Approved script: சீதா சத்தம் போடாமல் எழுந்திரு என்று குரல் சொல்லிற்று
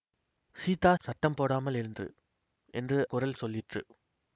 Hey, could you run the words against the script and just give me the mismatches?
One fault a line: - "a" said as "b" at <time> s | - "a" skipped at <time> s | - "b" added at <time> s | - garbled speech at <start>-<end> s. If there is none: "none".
none